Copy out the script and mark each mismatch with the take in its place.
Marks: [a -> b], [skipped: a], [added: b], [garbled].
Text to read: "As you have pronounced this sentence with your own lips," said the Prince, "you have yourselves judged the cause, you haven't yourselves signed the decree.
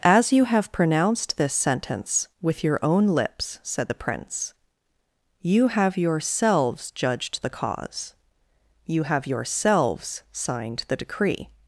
"As you have pronounced this sentence with your own lips," said the Prince, "you have yourselves judged the cause, you [haven't -> have] yourselves signed the decree.